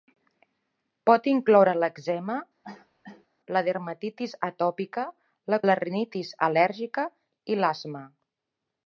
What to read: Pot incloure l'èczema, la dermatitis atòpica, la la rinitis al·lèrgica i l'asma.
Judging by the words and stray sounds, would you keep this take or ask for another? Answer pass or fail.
fail